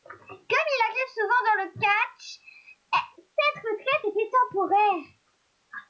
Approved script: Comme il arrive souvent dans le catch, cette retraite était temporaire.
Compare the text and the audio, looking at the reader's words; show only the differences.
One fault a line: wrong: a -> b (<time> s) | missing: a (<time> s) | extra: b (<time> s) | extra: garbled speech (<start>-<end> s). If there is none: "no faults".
no faults